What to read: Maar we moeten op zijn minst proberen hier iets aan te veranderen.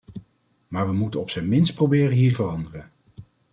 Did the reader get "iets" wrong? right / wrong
wrong